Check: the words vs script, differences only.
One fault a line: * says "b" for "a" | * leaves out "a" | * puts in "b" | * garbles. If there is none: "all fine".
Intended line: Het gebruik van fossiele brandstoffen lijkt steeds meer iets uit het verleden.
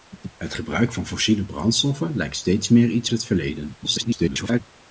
* leaves out "uit"
* garbles